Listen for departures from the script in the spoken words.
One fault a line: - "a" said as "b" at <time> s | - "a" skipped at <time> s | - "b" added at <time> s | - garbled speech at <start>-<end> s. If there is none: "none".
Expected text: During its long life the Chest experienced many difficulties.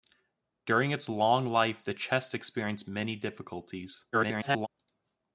- garbled speech at 4.1-4.7 s